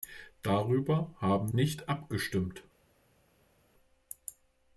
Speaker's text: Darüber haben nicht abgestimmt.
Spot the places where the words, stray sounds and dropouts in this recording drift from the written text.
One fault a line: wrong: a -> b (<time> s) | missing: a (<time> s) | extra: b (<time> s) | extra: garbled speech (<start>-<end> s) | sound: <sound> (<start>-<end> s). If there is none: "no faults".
no faults